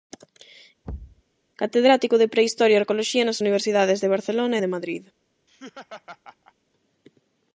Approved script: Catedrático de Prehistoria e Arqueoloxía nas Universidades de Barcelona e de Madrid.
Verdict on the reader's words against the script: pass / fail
pass